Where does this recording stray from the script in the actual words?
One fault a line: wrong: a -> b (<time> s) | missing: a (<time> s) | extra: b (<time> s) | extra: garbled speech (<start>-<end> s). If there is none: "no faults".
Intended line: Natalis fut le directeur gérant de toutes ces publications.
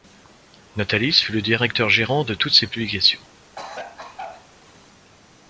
no faults